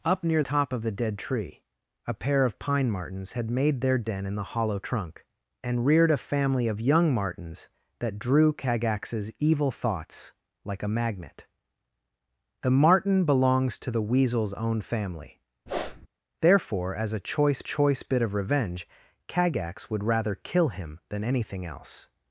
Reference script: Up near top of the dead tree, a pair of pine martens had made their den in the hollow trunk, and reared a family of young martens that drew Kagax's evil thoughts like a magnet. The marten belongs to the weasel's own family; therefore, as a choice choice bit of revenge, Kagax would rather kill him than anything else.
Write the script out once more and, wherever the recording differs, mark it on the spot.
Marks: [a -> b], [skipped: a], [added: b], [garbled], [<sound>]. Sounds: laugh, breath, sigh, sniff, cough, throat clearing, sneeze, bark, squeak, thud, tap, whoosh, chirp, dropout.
Up near top of the dead tree, a pair of pine martens had made their den in the hollow trunk, and reared a family of young martens that drew Kagax's evil thoughts like a magnet. The marten belongs to the weasel's own family; [sniff] therefore, as a choice choice bit of revenge, Kagax would rather kill him than anything else.